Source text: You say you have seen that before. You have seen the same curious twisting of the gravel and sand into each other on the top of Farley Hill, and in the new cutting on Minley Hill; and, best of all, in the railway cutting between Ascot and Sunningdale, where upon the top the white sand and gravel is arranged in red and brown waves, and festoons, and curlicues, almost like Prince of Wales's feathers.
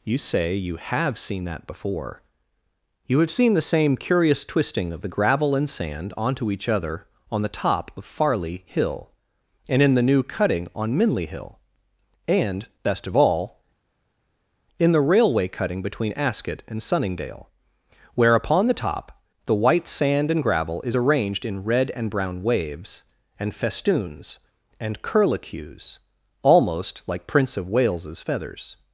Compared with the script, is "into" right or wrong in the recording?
wrong